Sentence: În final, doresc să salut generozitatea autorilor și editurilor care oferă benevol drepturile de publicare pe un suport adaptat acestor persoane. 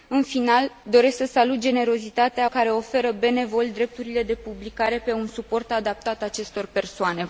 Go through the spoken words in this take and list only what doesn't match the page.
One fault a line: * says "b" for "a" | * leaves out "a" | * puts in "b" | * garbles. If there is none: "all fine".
* leaves out "autorilor și editurilor"